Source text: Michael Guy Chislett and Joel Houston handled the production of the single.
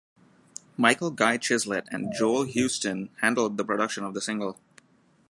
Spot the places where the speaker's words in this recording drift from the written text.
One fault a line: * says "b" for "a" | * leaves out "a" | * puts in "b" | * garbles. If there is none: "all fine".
all fine